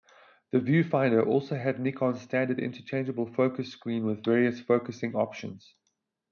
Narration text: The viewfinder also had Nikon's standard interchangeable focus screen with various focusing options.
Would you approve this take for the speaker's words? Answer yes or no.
yes